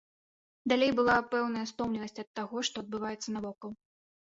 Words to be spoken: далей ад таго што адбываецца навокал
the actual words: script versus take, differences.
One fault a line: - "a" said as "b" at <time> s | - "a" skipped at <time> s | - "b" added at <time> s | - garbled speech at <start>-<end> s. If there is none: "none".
- "была пэўная стомленасць" added at 1.0 s